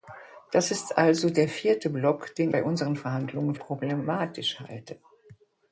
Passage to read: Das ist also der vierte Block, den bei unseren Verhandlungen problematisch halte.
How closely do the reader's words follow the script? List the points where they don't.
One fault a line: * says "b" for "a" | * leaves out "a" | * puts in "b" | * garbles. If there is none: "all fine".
all fine